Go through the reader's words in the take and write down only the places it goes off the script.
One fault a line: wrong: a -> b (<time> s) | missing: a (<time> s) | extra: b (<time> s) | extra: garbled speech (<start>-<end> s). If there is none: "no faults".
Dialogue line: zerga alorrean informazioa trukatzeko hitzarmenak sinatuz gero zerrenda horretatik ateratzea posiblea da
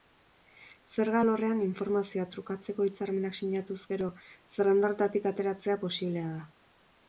no faults